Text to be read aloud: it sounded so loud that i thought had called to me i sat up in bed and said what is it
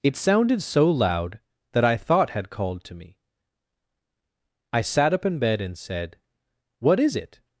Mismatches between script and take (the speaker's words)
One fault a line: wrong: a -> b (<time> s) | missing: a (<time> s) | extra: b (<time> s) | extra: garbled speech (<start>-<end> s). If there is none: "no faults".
no faults